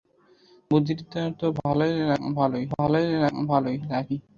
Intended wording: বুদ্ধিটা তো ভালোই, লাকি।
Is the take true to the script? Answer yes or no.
no